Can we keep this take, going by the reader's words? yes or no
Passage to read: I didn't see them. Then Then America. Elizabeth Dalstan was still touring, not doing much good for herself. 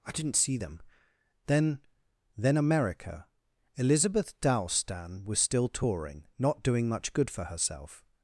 yes